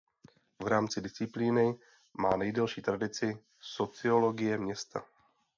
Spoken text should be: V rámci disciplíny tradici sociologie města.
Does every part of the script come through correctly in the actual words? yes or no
no